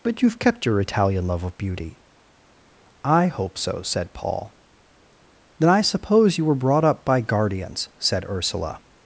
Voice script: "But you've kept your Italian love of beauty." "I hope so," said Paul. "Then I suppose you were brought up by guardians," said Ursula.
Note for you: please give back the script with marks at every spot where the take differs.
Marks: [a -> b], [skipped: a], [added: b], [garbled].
"But you've kept your Italian love of beauty." "I hope so," said Paul. "Then I suppose you were brought up by guardians," said Ursula.